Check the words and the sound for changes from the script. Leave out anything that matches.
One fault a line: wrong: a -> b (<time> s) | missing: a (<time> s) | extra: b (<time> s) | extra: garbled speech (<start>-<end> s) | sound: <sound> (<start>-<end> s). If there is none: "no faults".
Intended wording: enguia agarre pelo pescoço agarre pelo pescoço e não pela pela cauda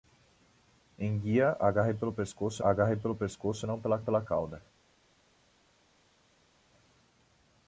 no faults